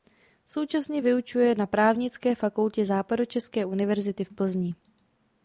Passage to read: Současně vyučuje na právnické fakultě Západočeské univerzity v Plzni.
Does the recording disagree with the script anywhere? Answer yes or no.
no